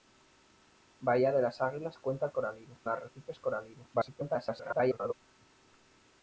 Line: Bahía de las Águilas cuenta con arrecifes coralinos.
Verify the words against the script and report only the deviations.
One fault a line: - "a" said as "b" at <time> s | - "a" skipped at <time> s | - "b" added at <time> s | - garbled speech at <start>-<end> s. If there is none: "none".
- "con" said as "coralinos" at 2.3 s
- garbled speech at 3.9-5.1 s